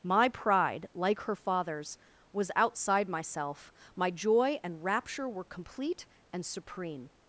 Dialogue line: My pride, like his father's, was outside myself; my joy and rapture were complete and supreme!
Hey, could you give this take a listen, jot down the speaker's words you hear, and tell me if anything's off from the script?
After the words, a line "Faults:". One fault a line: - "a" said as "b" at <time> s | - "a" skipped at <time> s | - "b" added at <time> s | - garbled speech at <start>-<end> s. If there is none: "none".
My pride, like her father's, was outside myself; my joy and rapture were complete and supreme!
Faults:
- "his" said as "her" at 1.2 s